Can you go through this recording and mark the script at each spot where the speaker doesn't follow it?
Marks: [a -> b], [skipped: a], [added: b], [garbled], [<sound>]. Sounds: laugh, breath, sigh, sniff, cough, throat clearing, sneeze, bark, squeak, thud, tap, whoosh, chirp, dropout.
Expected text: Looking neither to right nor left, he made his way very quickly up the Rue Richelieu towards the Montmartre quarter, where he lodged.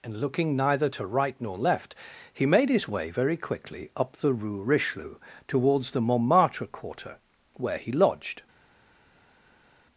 [added: and] Looking neither to right nor left, he made his way very quickly up the Rue Richelieu towards the Montmartre quarter, where he lodged.